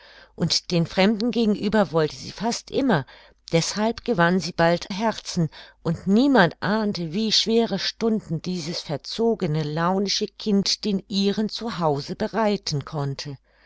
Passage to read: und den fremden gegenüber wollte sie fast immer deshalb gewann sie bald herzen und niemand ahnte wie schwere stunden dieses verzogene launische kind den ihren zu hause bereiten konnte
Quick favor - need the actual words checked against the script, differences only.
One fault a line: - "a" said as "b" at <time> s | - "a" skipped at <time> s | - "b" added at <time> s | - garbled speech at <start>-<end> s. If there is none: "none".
none